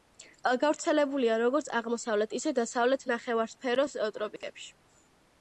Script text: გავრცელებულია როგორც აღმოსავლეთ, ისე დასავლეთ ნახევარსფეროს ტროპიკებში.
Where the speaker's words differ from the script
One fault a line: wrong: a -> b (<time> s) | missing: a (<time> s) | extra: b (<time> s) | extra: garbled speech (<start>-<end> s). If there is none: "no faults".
no faults